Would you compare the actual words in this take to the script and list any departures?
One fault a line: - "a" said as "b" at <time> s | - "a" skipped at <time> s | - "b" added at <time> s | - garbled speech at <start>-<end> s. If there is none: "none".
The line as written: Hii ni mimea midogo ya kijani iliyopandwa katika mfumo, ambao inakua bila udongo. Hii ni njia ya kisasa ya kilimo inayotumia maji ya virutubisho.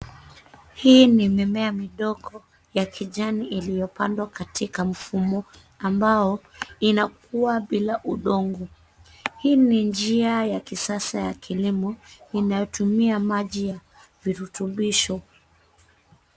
none